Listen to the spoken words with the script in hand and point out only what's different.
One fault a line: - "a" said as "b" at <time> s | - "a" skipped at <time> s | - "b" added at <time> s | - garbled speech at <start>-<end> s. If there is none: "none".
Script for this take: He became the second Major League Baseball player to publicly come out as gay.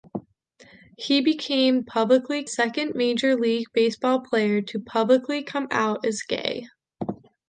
- "the" said as "publicly" at 1.8 s